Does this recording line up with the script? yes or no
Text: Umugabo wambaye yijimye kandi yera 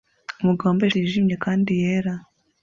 yes